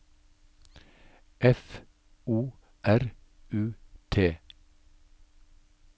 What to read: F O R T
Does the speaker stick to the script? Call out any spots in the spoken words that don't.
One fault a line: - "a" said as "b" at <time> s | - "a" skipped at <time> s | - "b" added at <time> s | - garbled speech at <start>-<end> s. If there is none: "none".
- "U" added at 3.5 s